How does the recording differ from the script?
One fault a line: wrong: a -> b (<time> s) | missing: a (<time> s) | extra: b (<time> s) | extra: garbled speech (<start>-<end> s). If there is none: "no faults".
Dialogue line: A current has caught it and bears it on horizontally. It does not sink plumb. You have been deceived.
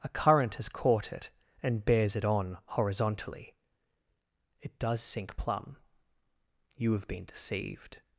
missing: not (5.0 s)